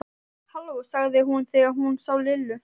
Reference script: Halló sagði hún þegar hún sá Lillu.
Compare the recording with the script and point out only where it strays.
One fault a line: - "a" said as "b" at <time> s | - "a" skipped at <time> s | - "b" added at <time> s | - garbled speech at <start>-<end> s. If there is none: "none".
none